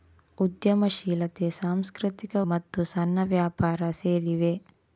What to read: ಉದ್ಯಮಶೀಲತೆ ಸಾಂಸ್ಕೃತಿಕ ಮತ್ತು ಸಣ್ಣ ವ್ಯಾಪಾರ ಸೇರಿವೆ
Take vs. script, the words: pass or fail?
pass